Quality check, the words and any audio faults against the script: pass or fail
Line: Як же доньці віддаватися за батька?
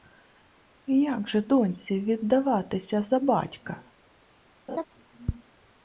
fail